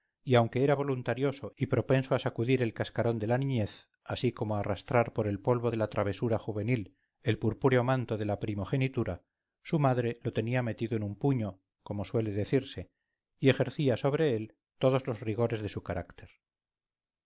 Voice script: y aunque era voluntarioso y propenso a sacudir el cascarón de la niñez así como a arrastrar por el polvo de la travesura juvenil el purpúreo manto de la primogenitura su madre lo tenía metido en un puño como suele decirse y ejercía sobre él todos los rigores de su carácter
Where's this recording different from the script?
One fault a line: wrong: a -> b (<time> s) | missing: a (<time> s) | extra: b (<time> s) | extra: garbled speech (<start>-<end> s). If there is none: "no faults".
no faults